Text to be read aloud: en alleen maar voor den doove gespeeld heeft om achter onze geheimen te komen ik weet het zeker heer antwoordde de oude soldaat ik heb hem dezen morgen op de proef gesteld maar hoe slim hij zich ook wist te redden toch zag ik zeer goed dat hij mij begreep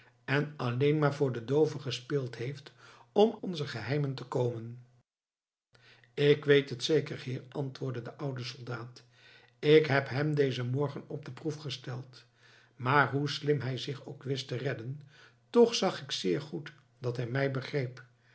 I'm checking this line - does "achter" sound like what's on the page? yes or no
no